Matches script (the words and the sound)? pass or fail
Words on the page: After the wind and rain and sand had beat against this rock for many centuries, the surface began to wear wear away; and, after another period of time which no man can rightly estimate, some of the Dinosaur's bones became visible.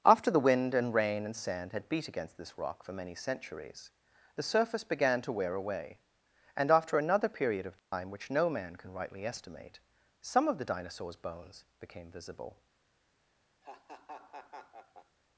fail